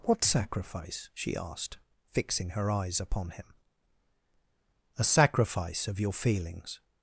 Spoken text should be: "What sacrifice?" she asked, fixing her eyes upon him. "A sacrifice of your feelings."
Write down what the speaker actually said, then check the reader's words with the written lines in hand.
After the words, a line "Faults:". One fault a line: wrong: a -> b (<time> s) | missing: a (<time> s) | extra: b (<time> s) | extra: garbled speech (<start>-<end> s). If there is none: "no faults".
"What sacrifice?" she asked, fixing her eyes upon him. "A sacrifice of your feelings."
Faults:
no faults